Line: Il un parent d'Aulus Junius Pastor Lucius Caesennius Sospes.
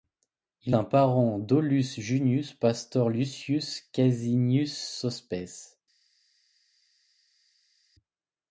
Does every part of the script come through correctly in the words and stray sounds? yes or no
yes